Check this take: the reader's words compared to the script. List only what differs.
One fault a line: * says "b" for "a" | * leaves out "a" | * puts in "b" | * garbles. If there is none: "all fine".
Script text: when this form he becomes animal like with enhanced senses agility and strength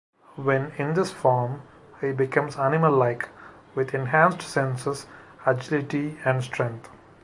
* puts in "in"